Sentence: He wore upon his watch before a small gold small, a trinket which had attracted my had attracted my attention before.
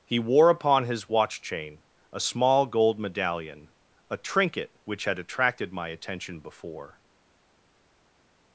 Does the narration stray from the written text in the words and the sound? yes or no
yes